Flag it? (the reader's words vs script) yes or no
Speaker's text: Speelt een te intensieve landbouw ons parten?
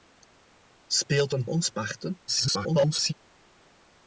yes